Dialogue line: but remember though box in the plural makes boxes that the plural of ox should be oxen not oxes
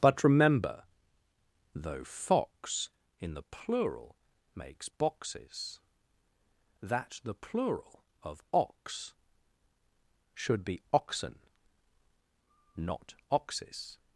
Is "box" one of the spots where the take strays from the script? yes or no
yes